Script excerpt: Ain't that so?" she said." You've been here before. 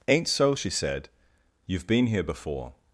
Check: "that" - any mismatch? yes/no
yes